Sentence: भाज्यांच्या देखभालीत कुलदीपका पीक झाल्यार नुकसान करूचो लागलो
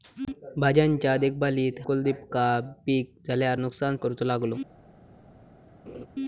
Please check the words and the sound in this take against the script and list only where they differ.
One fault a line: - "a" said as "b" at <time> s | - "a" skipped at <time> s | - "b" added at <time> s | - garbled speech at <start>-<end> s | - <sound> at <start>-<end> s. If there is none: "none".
- laugh at 5.9-6.1 s